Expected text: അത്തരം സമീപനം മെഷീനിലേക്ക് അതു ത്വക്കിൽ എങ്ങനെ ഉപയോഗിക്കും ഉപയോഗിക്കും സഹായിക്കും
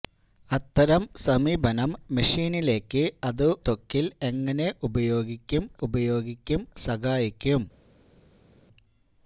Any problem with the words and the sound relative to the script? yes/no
no